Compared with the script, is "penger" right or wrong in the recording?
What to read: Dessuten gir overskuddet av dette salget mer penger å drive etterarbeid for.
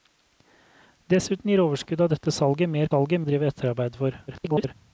wrong